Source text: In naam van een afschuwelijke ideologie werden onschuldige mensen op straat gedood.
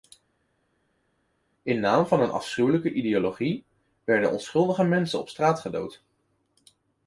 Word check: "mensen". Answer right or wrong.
right